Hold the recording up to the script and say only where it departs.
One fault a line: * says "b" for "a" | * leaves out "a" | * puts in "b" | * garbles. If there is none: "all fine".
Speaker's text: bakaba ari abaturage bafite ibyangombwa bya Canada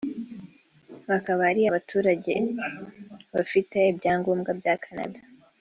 all fine